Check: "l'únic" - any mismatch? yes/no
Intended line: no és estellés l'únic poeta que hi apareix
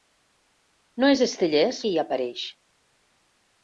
yes